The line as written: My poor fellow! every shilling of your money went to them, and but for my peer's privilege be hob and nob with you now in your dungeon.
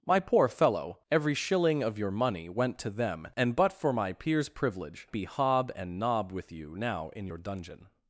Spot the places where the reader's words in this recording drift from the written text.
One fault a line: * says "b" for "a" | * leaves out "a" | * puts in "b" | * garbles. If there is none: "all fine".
all fine